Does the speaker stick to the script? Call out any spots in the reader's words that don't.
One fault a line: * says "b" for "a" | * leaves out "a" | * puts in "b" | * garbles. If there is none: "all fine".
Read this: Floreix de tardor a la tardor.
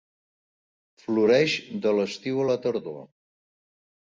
* says "l'estiu" for "tardor"